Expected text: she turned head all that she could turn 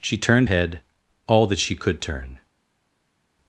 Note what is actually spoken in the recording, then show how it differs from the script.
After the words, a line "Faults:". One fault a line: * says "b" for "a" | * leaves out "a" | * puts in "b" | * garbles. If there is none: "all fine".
she turned head all that she could turn
Faults:
all fine